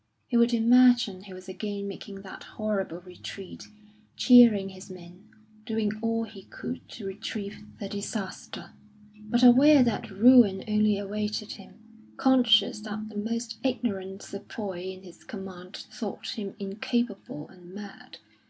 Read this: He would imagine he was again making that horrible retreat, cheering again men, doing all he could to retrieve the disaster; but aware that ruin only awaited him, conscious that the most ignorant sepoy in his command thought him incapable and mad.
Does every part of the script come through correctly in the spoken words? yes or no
no